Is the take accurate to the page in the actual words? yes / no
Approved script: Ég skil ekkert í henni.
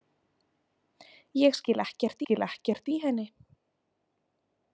no